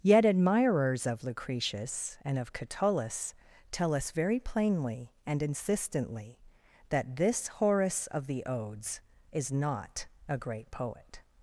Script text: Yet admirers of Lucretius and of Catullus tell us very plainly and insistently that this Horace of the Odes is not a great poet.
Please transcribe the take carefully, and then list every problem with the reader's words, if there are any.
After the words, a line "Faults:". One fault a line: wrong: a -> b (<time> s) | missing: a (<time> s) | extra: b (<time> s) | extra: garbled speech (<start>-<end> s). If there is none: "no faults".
Yet admirers of Lucretius and of Catullus tell us very plainly and insistently that this Horace of the Odes is not a great poet.
Faults:
no faults